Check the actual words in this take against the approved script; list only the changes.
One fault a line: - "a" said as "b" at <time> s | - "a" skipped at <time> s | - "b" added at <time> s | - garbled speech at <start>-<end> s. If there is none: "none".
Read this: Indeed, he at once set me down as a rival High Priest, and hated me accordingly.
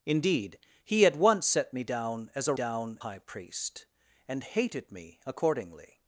- "rival" said as "down" at 2.5 s